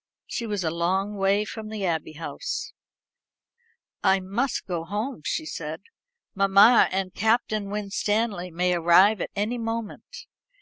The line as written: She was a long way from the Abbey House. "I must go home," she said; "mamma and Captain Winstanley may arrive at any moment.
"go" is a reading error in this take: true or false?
false